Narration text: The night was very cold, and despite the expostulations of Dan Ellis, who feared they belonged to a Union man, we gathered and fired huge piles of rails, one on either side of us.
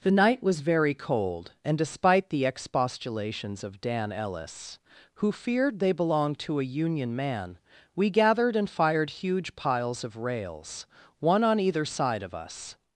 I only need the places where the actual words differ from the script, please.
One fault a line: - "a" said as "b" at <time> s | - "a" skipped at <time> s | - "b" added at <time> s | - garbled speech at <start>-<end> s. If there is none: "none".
none